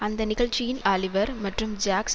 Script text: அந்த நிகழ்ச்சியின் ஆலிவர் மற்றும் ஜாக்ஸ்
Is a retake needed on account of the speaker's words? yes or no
no